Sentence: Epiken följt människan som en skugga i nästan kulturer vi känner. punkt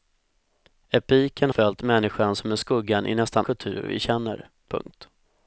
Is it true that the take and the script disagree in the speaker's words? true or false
false